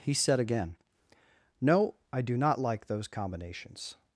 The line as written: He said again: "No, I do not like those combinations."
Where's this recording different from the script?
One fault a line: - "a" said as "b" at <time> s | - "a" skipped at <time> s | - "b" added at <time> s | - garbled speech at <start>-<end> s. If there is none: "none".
none